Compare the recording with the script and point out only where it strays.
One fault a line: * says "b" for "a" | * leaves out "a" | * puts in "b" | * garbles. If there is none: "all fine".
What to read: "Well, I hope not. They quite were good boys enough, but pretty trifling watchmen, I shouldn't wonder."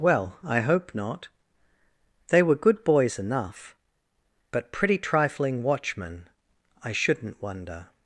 * leaves out "quite"